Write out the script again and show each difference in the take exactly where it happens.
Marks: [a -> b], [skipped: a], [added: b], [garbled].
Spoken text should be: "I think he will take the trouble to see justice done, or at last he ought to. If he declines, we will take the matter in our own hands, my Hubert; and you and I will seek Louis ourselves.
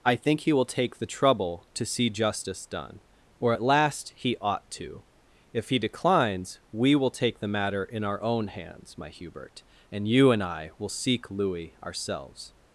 "I think he will take the trouble to see justice done, or at last he ought to. If he declines, we will take the matter in our own hands, my Hubert; and you and I will seek Louis ourselves.